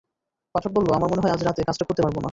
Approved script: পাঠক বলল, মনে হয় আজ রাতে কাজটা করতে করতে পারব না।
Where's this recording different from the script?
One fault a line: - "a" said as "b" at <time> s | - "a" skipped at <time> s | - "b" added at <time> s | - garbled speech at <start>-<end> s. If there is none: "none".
- "আমার" added at 0.9 s
- "করতে" skipped at 2.0 s